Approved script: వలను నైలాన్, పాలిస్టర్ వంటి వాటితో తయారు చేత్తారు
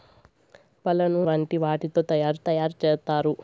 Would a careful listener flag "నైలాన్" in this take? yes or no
yes